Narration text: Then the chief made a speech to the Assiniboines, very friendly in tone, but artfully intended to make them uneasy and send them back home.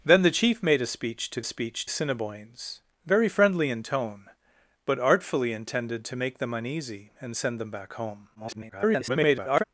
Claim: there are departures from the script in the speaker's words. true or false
true